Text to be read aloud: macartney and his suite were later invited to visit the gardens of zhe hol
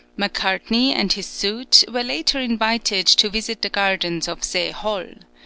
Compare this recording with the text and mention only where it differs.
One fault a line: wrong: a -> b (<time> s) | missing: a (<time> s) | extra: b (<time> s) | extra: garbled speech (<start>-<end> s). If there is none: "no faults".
no faults